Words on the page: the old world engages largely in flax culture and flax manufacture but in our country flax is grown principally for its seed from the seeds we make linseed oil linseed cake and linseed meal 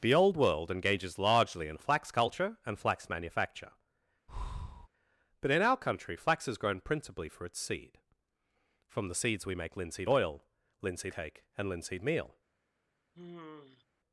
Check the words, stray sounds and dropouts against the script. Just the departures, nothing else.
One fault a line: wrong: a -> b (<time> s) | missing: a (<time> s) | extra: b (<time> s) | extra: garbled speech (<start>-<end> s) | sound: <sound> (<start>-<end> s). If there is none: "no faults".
sound: breath (4.3-4.9 s)
sound: sigh (13.1-13.8 s)